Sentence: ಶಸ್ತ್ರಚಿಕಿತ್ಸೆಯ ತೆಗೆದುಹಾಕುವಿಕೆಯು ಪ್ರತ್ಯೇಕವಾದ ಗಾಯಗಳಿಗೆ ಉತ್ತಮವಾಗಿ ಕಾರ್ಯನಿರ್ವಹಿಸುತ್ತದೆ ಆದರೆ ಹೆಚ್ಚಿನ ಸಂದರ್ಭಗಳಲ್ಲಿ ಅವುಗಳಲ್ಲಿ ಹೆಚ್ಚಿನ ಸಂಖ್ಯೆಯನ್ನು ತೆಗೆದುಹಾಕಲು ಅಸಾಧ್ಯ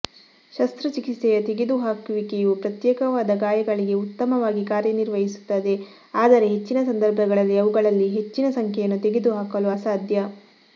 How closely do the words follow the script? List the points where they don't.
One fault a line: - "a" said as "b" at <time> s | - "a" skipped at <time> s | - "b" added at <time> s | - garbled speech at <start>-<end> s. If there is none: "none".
none